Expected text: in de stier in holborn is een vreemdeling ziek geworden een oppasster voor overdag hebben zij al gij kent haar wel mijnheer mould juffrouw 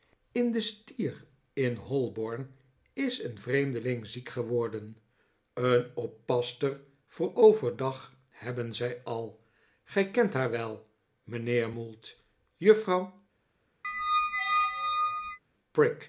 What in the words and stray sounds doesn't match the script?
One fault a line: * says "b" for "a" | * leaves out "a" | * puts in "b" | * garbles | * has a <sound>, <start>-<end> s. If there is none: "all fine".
* has a squeak, 13.8-15.4 s